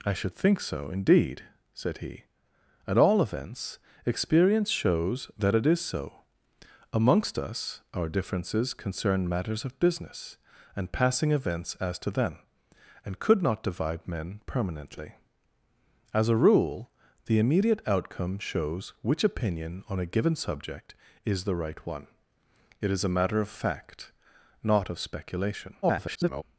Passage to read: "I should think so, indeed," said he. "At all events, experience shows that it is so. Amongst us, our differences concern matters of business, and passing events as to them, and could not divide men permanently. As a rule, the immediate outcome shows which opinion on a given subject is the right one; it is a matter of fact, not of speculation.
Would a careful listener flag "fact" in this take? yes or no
no